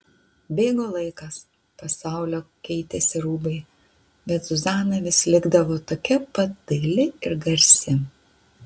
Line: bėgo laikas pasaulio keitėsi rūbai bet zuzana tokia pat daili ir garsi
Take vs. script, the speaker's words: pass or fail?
fail